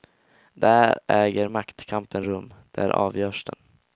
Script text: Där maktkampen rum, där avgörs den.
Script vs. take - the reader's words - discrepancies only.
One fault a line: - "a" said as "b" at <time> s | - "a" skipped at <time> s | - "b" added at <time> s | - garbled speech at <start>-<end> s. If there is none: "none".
- "äger" added at 1.1 s